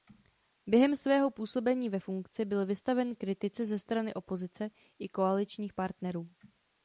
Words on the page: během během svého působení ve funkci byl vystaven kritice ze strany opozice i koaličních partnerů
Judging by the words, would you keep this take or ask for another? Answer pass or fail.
fail